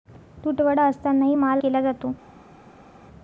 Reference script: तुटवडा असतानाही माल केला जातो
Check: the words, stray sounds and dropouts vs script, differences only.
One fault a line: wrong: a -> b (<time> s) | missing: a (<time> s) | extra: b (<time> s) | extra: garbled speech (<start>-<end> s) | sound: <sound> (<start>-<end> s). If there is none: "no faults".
no faults